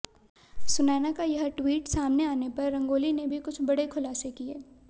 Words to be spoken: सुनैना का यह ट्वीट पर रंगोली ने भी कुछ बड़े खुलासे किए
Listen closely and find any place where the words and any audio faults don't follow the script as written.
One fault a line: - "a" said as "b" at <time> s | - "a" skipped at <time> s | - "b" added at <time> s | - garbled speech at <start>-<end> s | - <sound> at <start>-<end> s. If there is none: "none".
- "सामने आने" added at 1.9 s